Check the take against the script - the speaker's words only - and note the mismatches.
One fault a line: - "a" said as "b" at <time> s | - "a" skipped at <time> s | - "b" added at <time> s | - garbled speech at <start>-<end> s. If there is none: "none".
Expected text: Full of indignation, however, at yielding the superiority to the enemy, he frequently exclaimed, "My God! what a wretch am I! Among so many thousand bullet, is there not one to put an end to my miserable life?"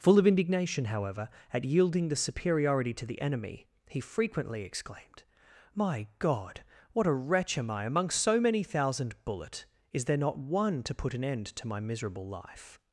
none